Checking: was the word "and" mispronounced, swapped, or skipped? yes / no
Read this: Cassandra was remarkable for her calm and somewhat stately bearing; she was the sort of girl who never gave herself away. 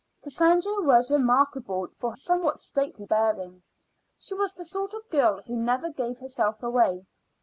yes